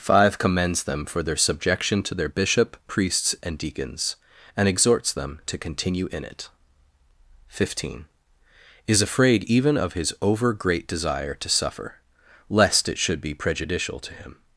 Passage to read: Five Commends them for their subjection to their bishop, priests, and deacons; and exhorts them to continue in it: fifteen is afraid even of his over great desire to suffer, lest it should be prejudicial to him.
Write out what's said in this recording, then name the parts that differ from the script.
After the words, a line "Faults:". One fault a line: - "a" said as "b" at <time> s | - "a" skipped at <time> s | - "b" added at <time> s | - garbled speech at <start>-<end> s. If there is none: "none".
Five Commends them for their subjection to their bishop, priests, and deacons; and exhorts them to continue in it: fifteen is afraid even of his over great desire to suffer, lest it should be prejudicial to him.
Faults:
none